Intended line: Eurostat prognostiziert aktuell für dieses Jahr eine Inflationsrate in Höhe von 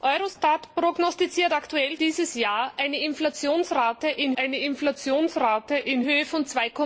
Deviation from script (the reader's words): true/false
true